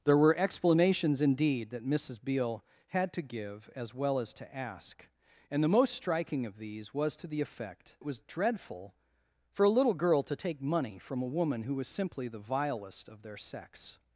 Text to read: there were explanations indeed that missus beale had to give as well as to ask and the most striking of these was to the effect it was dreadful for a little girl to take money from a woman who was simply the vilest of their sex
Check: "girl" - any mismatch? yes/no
no